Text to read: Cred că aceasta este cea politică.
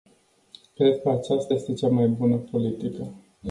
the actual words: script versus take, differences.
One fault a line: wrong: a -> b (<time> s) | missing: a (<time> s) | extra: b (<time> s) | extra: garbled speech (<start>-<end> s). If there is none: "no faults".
extra: mai bună (1.9 s)